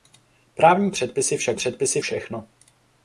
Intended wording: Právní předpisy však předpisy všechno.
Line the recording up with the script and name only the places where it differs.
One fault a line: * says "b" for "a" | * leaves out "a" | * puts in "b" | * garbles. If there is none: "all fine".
all fine